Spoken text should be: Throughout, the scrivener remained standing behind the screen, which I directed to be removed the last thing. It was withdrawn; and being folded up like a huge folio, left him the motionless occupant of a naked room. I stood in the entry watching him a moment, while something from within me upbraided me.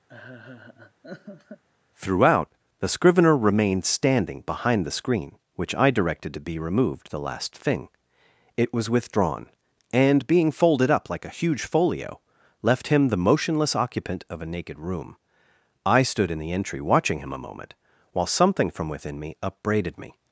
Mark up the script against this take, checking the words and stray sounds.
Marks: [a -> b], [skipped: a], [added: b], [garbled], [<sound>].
[laugh] Throughout, the scrivener remained standing behind the screen, which I directed to be removed the last thing. It was withdrawn; and being folded up like a huge folio, left him the motionless occupant of a naked room. I stood in the entry watching him a moment, while something from within me upbraided me.